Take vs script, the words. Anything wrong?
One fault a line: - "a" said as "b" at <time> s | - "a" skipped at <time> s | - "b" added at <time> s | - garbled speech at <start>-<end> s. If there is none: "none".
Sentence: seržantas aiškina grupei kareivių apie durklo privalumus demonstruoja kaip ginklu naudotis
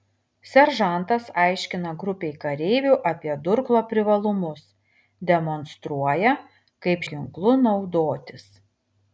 none